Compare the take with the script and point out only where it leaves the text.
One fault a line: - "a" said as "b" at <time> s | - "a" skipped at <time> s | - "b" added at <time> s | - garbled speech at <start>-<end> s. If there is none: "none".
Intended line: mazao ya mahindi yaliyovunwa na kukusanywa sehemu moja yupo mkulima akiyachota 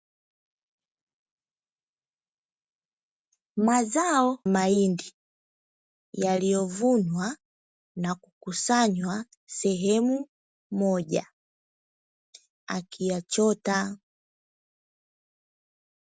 - "ya" skipped at 4.4 s
- "yupo mkulima" skipped at 11.3 s